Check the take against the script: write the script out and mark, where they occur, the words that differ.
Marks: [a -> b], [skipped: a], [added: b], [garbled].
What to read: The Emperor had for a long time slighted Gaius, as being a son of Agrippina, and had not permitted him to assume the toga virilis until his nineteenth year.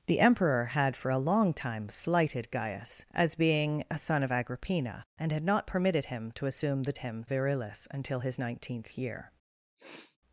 The Emperor had for a long time slighted Gaius, as being a son of Agrippina, and had not permitted him to assume the [toga -> him] virilis until his nineteenth year.